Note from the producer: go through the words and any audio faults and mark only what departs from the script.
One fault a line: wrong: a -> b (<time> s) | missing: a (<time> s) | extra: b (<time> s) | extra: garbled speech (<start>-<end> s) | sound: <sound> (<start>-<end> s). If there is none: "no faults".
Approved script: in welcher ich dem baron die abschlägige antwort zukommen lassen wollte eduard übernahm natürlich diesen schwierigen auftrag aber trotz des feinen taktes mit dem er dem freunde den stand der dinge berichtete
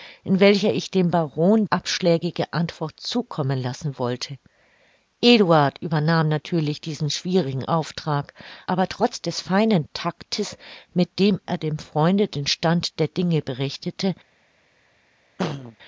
missing: die (1.6 s)
sound: throat clearing (15.4-15.8 s)